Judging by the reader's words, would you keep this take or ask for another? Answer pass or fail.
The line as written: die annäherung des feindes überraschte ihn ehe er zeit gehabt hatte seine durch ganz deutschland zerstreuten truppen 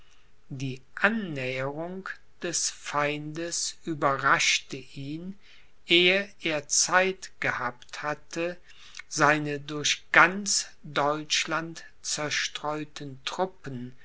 pass